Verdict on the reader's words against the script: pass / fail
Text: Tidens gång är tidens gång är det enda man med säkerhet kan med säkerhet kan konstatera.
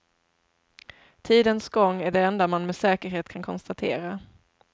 fail